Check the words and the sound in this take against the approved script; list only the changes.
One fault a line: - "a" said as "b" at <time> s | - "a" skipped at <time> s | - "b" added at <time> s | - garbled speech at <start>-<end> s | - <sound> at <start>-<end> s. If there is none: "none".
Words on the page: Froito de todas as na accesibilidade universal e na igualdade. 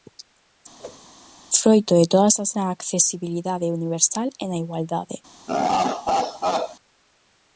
- whoosh at 0.8-1.1 s
- laugh at 5.5-6.8 s